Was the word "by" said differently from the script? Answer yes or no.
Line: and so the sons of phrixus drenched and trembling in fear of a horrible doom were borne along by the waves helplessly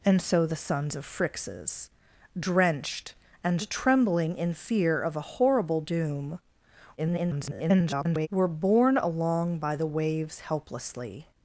no